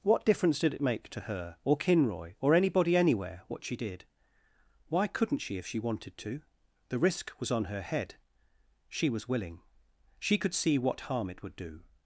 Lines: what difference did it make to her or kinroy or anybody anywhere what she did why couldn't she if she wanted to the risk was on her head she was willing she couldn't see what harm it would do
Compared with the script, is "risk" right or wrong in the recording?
right